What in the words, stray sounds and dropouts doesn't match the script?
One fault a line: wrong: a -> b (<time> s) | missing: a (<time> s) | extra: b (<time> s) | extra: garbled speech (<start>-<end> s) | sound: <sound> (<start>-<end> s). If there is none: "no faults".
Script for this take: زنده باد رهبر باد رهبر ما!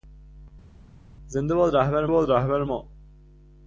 no faults